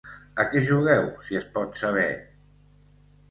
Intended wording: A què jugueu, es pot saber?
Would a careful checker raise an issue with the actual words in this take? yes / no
yes